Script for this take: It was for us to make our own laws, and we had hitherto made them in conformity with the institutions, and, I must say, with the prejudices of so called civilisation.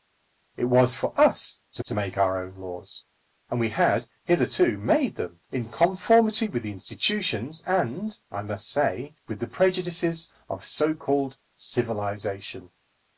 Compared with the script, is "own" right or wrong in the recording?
right